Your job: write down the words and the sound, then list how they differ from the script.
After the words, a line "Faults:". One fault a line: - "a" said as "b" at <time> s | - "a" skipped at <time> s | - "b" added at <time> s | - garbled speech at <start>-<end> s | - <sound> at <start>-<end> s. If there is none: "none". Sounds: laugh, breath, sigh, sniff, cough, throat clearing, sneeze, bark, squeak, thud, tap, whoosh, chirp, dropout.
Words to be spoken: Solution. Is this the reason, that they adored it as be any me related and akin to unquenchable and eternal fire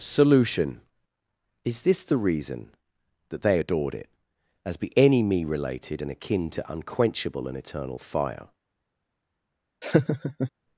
Solution. Is this the reason, that they adored it as be any me related and akin to unquenchable and eternal fire
Faults:
- laugh at 9.8-10.5 s